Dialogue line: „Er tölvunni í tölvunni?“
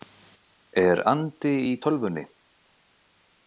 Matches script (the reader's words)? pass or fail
fail